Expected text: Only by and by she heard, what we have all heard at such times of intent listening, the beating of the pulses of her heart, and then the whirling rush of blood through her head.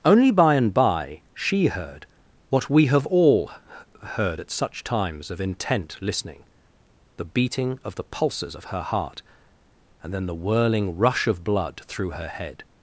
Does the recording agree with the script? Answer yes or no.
yes